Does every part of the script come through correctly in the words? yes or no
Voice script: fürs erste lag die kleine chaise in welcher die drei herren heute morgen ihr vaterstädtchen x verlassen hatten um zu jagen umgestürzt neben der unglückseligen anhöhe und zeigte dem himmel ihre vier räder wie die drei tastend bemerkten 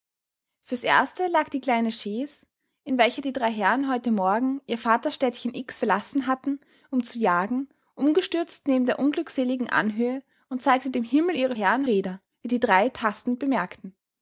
no